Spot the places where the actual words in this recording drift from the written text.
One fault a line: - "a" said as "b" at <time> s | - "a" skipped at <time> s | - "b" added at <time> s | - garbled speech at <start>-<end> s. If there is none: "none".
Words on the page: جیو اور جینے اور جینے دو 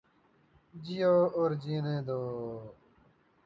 - "اور جینے" skipped at 2.0 s